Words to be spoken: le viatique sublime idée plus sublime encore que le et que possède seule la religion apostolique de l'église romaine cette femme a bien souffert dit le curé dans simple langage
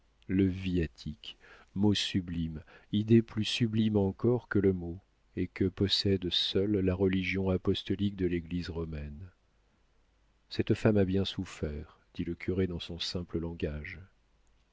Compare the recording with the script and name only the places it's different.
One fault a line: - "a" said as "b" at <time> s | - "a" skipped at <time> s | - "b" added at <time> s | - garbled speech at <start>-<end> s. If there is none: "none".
- "mot" added at 1.8 s
- "mot" added at 4.7 s
- "son" added at 12.8 s